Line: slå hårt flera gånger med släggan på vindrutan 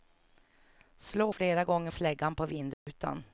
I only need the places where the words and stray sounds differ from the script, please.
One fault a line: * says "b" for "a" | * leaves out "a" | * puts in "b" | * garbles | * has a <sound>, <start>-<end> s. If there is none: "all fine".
* leaves out "hårt"
* leaves out "med"
* has a dropout, 2.7-2.9 s